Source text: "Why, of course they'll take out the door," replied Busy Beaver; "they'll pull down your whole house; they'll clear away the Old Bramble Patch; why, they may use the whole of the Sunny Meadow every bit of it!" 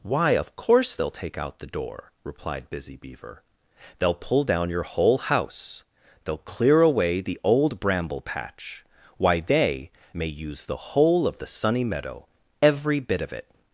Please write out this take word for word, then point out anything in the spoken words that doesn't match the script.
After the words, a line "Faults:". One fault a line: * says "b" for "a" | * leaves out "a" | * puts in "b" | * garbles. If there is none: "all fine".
"Why, of course they'll take out the door," replied Busy Beaver; "they'll pull down your whole house; they'll clear away the Old Bramble Patch; why, they may use the whole of the Sunny Meadow every bit of it!"
Faults:
all fine